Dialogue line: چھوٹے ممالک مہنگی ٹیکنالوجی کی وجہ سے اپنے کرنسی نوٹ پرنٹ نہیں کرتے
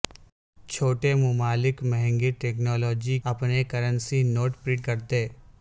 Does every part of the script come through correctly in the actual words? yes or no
no